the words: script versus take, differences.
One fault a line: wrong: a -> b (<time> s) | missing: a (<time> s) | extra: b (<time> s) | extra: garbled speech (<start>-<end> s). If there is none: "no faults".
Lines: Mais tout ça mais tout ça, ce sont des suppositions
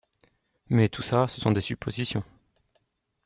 missing: mais tout ça (1.3 s)